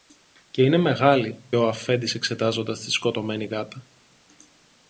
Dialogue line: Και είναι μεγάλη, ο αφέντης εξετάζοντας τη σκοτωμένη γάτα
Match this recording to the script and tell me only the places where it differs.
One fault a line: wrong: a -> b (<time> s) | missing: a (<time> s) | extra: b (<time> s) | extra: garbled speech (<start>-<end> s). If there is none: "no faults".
no faults